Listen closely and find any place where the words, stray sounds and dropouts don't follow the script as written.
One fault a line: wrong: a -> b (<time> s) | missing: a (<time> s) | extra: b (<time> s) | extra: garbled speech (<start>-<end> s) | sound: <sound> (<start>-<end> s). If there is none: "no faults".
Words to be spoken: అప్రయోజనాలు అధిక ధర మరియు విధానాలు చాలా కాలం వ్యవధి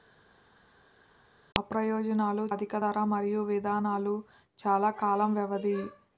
no faults